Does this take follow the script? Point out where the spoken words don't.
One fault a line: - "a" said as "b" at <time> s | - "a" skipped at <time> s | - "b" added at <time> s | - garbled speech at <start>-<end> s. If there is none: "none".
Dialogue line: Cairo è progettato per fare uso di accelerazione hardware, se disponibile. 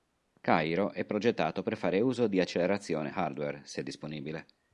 none